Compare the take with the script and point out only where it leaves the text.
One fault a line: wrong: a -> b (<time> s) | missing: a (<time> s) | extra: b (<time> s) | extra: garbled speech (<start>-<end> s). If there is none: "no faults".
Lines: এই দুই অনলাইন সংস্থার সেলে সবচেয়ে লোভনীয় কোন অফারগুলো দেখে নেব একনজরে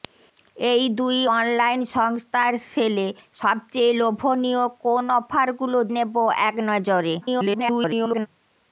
missing: দেখে (5.8 s)
extra: garbled speech (7.2-8.3 s)